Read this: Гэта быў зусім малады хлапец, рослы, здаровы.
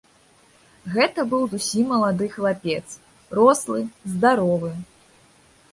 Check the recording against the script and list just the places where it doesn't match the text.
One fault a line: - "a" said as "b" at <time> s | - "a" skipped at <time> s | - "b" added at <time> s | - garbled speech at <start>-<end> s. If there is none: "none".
none